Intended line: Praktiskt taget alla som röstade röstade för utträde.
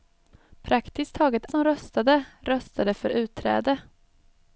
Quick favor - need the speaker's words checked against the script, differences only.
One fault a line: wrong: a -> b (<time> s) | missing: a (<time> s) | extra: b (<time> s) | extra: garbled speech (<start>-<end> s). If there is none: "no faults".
missing: alla (1.4 s)